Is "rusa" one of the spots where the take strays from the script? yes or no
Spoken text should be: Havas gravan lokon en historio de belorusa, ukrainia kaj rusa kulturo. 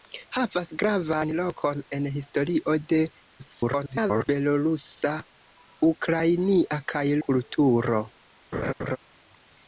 yes